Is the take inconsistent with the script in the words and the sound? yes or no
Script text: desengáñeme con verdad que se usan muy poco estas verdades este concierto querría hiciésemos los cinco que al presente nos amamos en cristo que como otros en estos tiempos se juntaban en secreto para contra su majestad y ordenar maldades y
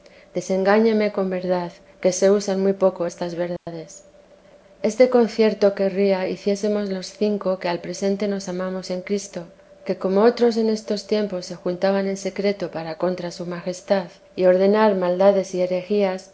yes